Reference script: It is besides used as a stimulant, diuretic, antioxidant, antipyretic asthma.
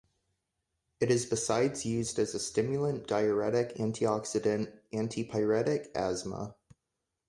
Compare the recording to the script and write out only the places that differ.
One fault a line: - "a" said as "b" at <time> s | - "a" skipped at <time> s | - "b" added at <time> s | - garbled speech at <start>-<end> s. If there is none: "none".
none